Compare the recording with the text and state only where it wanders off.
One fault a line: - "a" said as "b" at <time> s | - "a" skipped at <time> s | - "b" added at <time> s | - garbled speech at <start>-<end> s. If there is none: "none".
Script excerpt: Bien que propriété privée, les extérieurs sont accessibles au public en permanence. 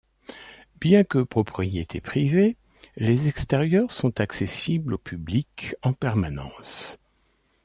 none